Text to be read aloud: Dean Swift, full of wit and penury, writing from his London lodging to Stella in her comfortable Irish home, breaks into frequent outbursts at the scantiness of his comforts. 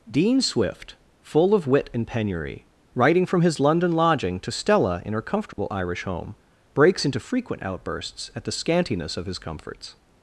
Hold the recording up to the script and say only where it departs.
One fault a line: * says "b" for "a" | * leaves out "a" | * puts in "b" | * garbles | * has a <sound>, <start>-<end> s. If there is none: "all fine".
* has a dropout, 5.5-5.6 s